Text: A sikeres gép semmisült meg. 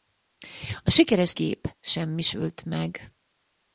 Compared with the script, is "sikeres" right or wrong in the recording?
right